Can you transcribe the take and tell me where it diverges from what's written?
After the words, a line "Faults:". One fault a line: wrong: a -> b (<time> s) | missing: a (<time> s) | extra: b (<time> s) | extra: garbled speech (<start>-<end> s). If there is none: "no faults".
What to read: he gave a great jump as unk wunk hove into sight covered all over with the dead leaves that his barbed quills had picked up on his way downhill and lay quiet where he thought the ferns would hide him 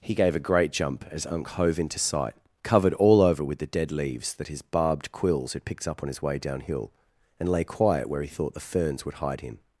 he gave a great jump as unk hove into sight covered all over with the dead leaves that his barbed quills had picked up on his way downhill and lay quiet where he thought the ferns would hide him
Faults:
missing: wunk (1.5 s)